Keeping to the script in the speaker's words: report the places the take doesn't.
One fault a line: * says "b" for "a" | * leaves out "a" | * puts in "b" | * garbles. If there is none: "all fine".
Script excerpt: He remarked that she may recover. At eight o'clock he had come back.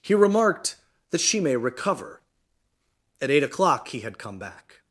all fine